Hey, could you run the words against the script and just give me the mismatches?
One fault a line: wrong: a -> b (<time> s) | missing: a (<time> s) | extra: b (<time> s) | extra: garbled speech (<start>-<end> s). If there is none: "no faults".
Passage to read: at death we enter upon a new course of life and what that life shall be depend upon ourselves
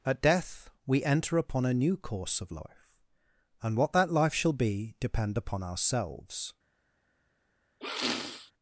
no faults